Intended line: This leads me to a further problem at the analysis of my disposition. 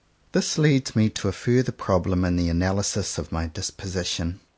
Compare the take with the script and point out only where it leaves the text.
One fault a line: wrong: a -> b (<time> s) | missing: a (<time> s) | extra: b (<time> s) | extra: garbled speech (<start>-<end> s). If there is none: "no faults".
wrong: at -> in (2.2 s)